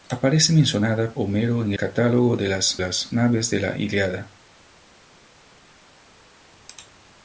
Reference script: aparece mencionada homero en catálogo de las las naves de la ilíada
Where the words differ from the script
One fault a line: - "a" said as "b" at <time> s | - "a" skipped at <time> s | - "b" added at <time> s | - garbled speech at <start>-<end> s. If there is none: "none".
none